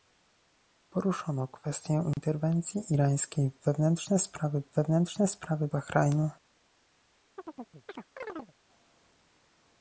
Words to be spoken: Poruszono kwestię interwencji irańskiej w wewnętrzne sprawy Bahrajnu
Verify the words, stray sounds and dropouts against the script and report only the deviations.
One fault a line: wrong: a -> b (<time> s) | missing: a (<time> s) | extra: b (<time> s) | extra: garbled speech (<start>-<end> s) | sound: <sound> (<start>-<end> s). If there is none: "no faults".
sound: dropout (2.1-2.2 s)
extra: w wewnętrzne sprawy (4.6 s)
sound: chirp (7.4-8.5 s)